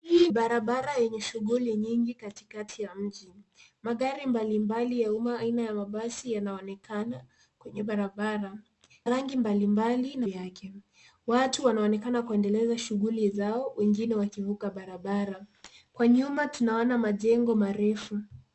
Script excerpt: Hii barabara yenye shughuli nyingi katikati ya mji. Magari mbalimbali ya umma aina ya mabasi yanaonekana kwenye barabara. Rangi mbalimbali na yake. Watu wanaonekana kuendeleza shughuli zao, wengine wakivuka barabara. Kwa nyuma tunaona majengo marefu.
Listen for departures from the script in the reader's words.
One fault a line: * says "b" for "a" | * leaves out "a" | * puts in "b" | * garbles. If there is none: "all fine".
all fine